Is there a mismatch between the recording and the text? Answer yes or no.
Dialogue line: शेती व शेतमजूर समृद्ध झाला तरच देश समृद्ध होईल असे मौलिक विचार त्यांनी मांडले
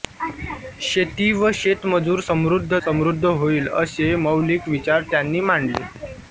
yes